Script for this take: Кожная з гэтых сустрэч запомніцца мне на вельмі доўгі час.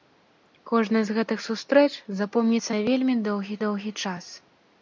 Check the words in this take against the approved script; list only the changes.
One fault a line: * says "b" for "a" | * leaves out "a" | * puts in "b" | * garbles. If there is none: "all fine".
* leaves out "мне"
* puts in "доўгі"